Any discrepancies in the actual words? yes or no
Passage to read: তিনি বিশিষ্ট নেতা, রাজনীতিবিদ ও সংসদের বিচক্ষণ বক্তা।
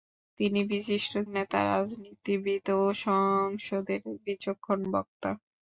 no